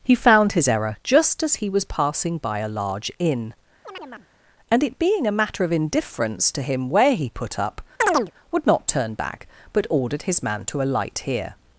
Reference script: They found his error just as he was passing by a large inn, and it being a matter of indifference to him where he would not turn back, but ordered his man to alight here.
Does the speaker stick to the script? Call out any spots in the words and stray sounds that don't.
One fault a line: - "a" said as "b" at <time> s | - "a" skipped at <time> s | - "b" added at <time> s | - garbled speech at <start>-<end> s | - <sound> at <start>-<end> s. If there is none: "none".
- "They" said as "He" at 0.0 s
- chirp at 3.8-4.3 s
- "put up" added at 7.3 s
- chirp at 8.0-8.3 s